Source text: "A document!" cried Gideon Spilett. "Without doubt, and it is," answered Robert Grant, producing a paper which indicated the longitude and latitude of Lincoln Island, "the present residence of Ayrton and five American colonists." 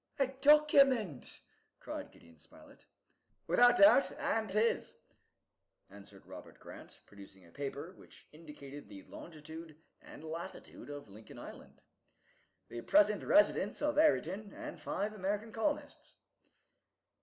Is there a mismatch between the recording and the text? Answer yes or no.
no